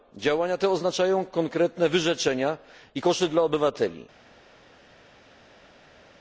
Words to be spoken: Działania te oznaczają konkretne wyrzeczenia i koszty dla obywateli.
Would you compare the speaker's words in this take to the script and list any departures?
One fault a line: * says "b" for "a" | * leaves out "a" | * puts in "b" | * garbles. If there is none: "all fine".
all fine